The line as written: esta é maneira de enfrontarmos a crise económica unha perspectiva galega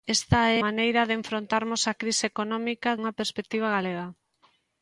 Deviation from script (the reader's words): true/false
false